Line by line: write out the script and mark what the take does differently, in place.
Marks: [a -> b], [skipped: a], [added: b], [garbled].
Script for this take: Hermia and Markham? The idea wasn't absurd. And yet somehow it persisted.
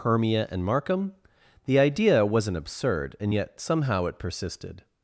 Hermia and Markham? The idea wasn't absurd. And yet somehow it persisted.